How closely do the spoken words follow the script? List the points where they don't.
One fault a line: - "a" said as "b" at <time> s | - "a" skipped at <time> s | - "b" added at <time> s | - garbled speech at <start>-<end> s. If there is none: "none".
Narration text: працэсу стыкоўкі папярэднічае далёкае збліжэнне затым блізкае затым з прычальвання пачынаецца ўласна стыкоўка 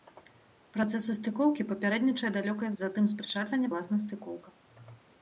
- "збліжэнне" skipped at 2.7 s
- "блізкае затым" skipped at 3.0 s
- "пачынаецца" skipped at 3.7 s